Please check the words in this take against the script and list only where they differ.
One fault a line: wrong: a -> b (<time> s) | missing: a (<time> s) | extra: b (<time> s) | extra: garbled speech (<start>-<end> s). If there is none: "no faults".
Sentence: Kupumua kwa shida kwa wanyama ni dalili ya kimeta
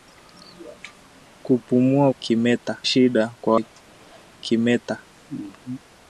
wrong: kwa -> kimeta (2.2 s)
missing: wanyama ni dalili (3.5 s)